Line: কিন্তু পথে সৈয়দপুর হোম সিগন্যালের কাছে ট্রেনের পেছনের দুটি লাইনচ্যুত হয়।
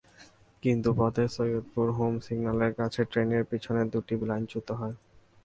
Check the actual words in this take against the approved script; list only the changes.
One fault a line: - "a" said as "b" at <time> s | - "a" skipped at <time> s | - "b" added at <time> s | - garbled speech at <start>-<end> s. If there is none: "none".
none